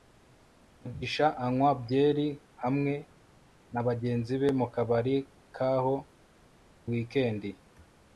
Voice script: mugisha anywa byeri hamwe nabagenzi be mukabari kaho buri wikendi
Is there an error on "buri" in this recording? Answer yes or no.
yes